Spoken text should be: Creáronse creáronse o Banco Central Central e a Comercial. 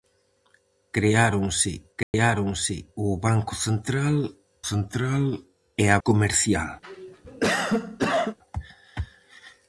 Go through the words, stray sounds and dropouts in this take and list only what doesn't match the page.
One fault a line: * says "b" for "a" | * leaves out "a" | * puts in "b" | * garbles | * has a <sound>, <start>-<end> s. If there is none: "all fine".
* has a dropout, 2.0-2.1 s
* has a cough, 6.8-8.4 s